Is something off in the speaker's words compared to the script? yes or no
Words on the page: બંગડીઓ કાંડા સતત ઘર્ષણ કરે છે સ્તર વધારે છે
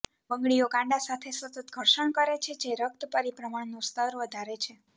yes